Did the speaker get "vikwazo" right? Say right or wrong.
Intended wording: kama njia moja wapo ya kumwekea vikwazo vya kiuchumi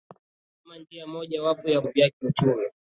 wrong